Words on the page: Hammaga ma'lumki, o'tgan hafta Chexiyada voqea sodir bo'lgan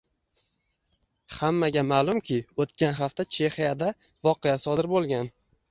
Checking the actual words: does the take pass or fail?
pass